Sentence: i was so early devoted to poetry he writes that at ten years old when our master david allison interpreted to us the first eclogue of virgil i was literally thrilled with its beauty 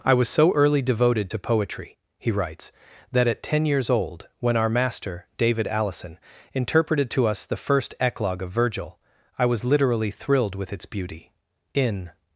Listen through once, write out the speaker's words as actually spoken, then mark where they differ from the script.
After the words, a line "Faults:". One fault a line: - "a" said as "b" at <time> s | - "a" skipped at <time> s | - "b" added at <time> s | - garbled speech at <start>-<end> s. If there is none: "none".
i was so early devoted to poetry he writes that at ten years old when our master david allison interpreted to us the first eclogue of virgil i was literally thrilled with its beauty in
Faults:
- "in" added at 11.7 s